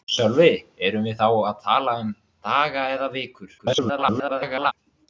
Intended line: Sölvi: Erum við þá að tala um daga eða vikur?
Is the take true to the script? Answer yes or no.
no